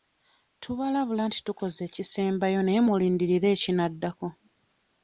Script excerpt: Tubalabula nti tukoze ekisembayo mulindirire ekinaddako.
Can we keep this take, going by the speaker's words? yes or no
no